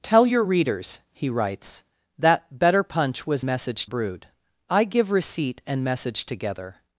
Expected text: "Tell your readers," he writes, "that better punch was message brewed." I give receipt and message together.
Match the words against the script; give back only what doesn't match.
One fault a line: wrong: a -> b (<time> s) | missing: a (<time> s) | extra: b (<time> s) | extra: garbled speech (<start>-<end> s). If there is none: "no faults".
no faults